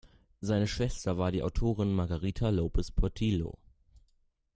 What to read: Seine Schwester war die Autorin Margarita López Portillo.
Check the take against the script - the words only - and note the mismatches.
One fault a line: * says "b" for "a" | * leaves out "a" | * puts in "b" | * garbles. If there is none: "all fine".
all fine